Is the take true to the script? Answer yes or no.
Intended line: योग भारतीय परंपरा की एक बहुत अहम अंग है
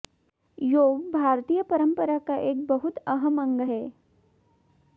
no